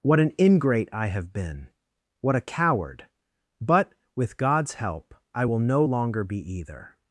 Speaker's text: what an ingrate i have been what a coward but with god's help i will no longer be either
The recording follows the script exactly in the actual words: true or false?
true